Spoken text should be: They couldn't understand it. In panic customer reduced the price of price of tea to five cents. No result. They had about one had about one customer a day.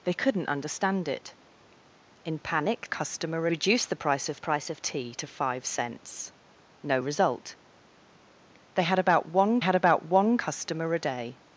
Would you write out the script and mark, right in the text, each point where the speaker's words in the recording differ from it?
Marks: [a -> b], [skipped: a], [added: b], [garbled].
They couldn't understand it. In panic customer reduced the price of price of tea to five cents. No result. They had about one had about one customer a day.